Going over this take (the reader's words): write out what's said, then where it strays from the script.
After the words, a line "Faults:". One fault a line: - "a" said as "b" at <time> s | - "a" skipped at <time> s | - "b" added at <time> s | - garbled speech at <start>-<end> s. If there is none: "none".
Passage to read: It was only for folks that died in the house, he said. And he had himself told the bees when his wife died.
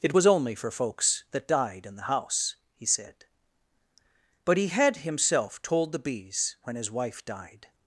It was only for folks that died in the house, he said. But he had himself told the bees when his wife died.
Faults:
- "And" said as "But" at 4.5 s